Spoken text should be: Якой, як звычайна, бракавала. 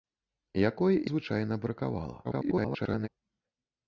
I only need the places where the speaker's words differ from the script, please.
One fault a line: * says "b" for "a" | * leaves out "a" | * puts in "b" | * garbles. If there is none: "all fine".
* leaves out "як"
* garbles